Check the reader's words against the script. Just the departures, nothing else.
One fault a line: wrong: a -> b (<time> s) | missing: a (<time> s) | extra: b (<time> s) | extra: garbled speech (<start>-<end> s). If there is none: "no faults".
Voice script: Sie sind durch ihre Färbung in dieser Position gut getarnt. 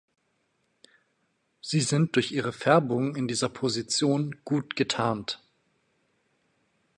no faults